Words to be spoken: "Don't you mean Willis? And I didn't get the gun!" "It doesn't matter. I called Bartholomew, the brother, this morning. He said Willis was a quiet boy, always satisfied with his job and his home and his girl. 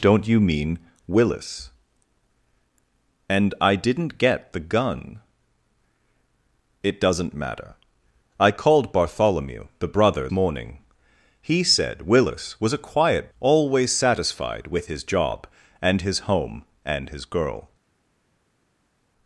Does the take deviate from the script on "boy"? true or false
true